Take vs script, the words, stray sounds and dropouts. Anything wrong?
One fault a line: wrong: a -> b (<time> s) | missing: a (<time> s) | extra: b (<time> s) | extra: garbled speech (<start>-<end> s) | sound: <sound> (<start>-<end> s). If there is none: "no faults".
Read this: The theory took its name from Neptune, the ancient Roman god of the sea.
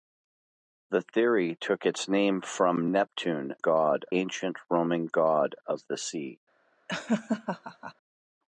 wrong: the -> god (3.6 s)
sound: laugh (6.9-7.9 s)